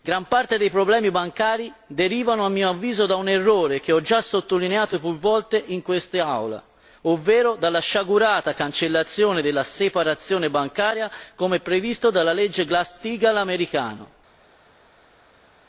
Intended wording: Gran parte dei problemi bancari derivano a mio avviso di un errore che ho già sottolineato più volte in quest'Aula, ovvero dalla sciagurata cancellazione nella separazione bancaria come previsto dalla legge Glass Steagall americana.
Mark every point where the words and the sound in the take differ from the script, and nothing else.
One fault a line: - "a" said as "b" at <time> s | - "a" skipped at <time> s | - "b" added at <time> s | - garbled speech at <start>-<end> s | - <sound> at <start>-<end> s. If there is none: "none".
- "di" said as "da" at 3.0 s
- "nella" said as "della" at 9.4 s